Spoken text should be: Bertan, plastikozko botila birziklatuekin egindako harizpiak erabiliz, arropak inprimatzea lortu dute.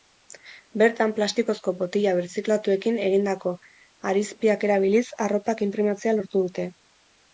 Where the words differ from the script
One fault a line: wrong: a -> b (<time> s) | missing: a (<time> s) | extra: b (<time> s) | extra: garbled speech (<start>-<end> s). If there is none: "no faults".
no faults